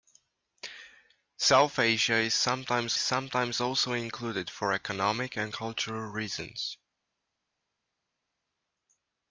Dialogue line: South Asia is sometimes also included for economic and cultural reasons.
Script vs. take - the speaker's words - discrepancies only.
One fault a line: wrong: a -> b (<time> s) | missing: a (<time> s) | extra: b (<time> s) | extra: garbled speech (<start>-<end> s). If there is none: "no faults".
extra: sometimes (3.0 s)